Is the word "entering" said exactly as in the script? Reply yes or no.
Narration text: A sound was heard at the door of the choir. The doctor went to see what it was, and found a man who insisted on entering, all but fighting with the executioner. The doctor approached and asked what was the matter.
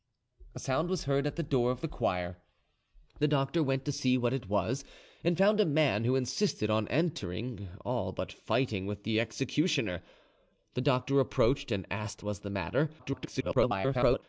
yes